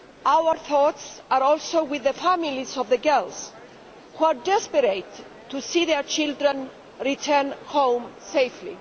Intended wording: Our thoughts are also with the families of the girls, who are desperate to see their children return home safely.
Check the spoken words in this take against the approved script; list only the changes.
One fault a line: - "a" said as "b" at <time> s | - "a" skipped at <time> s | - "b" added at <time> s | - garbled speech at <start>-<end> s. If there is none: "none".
none